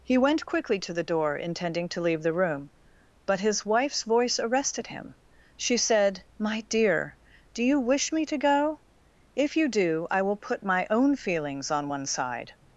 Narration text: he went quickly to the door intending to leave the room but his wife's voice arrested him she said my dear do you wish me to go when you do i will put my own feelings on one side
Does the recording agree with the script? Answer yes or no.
no